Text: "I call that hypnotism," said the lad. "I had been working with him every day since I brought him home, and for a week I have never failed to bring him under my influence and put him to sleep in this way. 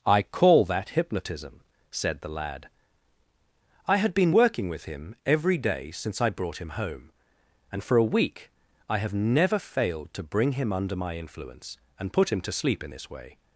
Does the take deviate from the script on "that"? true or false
false